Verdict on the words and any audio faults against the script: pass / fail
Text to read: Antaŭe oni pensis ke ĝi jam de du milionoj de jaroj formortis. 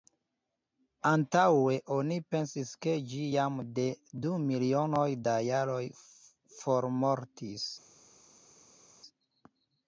fail